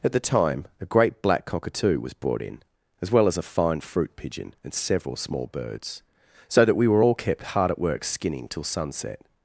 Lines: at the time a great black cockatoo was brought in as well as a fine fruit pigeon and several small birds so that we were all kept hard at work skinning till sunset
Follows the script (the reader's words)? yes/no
yes